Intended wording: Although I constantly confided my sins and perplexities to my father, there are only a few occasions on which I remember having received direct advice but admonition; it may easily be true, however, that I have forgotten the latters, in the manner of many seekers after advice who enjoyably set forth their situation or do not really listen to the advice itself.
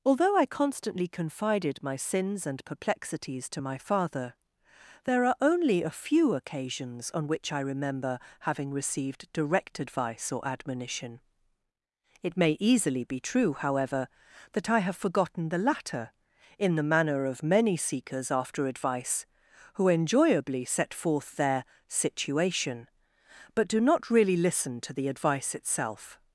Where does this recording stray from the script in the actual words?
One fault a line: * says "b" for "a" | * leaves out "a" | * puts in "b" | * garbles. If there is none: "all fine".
* says "or" for "but"
* says "latter" for "latters"
* says "but" for "or"